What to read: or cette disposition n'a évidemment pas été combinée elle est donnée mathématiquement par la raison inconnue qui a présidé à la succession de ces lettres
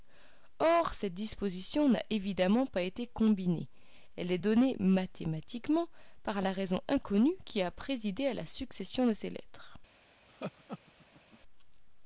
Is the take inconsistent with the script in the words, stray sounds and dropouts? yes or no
yes